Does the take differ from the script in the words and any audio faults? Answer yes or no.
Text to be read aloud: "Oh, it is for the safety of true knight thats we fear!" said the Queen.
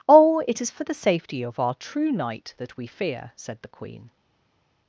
yes